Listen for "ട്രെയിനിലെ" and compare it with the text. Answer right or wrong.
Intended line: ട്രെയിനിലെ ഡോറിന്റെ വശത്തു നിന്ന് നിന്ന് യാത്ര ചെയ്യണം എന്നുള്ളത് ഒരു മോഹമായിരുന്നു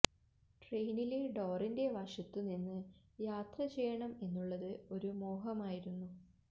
right